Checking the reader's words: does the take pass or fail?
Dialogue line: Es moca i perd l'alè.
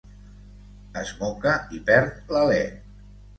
pass